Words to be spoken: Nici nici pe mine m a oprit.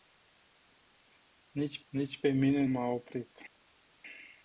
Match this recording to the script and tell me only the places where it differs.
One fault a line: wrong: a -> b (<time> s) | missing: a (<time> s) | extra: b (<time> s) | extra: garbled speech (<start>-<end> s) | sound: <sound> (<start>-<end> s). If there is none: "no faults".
no faults